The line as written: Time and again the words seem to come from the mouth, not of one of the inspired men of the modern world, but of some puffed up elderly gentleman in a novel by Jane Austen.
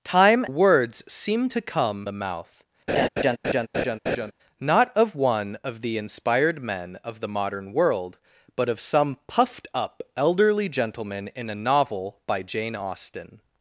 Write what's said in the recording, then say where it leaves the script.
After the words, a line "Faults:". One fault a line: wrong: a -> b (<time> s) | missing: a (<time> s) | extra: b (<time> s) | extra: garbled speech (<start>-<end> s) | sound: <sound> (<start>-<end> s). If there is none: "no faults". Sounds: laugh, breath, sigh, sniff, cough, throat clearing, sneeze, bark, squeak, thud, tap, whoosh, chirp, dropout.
Time words seem to come the mouth, not of one of the inspired men of the modern world, but of some puffed up elderly gentleman in a novel by Jane Austen.
Faults:
missing: and again the (0.5 s)
missing: from (2.1 s)
sound: laugh (2.9-4.3 s)